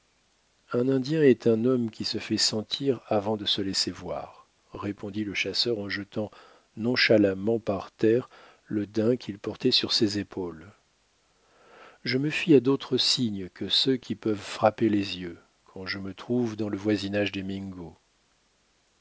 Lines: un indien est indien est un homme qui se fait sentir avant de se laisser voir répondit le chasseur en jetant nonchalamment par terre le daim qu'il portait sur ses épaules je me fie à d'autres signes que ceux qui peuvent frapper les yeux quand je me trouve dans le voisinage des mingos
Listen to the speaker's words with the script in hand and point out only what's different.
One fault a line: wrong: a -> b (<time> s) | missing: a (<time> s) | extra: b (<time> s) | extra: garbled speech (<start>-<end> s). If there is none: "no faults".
missing: indien est (1.4 s)